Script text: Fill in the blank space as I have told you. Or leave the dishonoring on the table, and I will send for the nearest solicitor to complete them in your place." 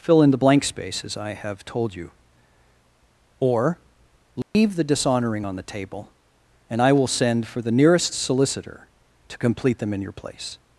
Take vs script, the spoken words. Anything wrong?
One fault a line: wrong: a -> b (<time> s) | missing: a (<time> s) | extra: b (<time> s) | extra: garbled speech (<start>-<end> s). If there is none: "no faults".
no faults